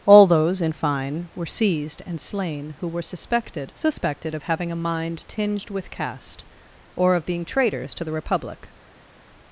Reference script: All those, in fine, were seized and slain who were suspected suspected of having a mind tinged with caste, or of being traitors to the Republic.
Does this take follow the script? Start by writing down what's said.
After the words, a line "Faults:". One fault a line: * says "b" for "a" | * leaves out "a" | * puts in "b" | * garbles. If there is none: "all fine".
All those, in fine, were seized and slain who were suspected suspected of having a mind tinged with caste, or of being traitors to the Republic.
Faults:
all fine